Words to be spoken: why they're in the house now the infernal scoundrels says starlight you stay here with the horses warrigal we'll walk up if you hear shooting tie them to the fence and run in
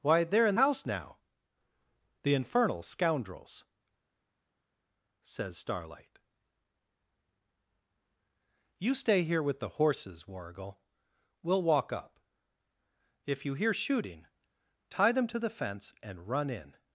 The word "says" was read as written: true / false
true